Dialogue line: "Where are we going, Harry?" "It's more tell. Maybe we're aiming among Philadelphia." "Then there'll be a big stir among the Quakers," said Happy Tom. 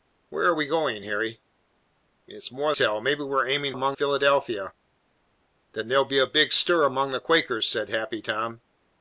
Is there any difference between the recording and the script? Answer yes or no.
no